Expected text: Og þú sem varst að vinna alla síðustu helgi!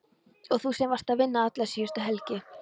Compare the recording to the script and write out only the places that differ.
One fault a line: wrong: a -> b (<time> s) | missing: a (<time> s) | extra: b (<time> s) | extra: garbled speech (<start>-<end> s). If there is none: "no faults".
no faults